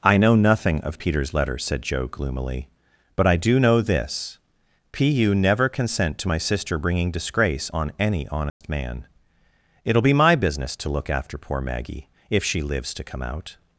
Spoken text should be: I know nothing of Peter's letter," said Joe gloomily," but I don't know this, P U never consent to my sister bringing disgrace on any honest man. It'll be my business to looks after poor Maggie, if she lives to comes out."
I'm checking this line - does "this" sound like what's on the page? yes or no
yes